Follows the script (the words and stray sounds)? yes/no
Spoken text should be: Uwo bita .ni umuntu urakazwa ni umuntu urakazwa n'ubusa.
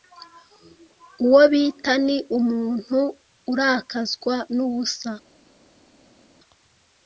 no